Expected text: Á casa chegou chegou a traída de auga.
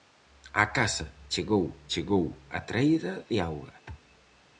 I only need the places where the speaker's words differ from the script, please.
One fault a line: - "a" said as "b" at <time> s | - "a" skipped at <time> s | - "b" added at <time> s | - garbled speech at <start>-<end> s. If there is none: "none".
none